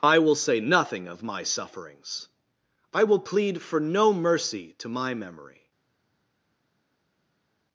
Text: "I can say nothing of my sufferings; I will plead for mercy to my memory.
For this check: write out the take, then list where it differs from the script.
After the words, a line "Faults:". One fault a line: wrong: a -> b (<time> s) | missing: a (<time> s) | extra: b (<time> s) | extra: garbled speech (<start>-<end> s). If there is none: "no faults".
"I will say nothing of my sufferings; I will plead for no mercy to my memory.
Faults:
wrong: can -> will (0.2 s)
extra: no (3.8 s)